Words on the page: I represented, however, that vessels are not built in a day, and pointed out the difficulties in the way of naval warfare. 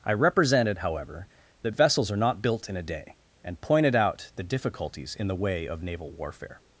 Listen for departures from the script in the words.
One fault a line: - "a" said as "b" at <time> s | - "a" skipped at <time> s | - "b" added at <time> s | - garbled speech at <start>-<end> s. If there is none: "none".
none